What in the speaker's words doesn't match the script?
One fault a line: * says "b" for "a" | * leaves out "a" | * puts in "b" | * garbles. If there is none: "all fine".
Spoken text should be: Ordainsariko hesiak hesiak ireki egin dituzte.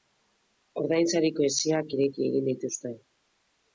* leaves out "hesiak"